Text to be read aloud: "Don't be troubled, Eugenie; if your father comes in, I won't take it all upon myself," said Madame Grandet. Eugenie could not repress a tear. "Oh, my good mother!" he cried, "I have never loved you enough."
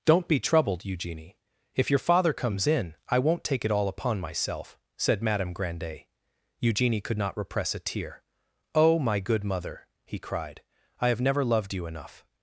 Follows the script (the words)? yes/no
yes